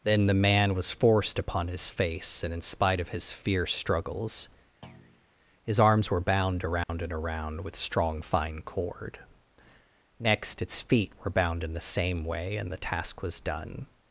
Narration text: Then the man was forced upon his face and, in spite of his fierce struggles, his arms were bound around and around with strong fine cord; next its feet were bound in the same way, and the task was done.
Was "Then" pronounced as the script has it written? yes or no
yes